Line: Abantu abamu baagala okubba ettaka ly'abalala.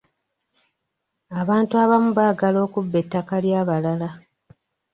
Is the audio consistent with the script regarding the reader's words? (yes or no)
yes